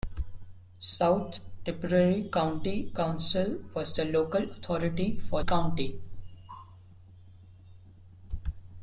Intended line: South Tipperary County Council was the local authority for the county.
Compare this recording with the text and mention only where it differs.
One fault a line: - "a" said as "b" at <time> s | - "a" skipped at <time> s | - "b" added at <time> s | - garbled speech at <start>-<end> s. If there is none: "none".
- "the" skipped at 5.4 s